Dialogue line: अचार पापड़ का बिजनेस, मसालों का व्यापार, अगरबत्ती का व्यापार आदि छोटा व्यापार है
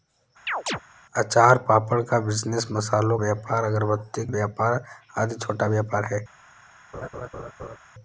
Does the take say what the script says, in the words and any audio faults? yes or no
no